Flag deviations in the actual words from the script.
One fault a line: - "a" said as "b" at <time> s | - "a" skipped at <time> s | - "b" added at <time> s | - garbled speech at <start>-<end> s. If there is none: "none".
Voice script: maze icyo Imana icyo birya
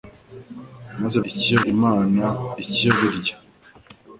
none